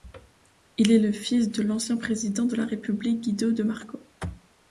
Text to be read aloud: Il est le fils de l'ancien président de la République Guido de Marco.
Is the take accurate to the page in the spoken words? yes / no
yes